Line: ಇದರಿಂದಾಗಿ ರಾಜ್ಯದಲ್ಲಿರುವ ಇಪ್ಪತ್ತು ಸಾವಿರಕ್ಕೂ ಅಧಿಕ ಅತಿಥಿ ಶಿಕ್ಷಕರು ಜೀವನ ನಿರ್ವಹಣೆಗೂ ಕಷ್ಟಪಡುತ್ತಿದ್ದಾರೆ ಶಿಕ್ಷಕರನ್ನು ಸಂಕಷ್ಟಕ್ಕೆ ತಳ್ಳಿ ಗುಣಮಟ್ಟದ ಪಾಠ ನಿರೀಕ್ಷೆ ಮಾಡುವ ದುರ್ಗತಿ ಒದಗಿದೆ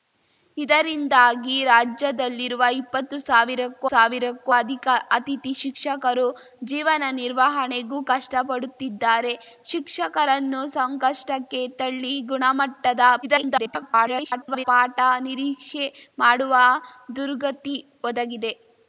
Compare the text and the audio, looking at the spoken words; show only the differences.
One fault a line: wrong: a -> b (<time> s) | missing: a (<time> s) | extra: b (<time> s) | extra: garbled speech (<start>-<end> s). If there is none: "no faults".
extra: ಸಾವಿರಕ್ಕೂ (3.9 s)
extra: garbled speech (13.2-14.7 s)